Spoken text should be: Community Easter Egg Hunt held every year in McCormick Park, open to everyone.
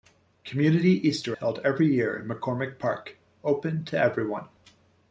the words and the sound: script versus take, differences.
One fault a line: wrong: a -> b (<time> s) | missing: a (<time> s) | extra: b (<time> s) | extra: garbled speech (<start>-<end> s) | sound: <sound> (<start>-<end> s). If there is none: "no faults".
missing: Egg Hunt (1.4 s)